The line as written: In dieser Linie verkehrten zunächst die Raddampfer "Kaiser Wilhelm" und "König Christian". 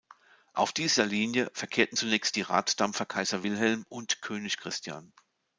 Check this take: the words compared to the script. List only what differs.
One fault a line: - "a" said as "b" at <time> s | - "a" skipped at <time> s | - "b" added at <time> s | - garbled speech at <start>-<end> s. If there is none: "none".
- "In" said as "Auf" at 0.5 s